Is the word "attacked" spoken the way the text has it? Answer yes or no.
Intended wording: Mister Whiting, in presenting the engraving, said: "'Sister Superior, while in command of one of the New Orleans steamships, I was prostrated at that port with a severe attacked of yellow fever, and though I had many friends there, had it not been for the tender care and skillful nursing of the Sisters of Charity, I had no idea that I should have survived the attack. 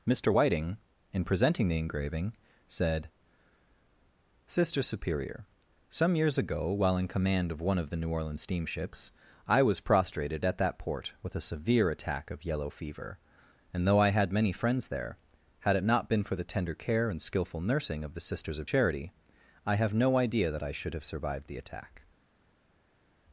no